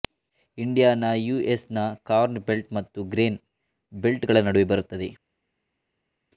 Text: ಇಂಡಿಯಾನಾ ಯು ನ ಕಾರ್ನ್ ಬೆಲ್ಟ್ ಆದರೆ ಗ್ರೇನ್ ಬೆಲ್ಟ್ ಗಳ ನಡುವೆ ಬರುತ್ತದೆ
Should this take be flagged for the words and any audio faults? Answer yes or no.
yes